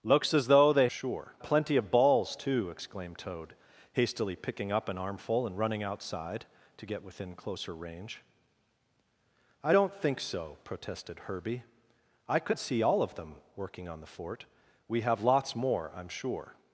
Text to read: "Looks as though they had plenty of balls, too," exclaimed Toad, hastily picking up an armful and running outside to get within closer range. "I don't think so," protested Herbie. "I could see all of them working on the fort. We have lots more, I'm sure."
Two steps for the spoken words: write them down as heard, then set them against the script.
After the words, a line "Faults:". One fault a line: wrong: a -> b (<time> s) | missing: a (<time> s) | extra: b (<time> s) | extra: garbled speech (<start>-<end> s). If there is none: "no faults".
"Looks as though they sure plenty of balls, too," exclaimed Toad, hastily picking up an armful and running outside to get within closer range. "I don't think so," protested Herbie. "I could see all of them working on the fort. We have lots more, I'm sure."
Faults:
wrong: had -> sure (0.9 s)